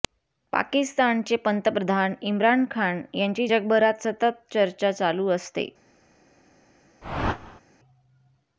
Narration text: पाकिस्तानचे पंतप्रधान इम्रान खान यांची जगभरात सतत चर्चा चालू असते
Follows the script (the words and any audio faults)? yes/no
no